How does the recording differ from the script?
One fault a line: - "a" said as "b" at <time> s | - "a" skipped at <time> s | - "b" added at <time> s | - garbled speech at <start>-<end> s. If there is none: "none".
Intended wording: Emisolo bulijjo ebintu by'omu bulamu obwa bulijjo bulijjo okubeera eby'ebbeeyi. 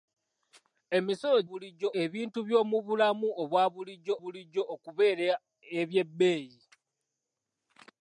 none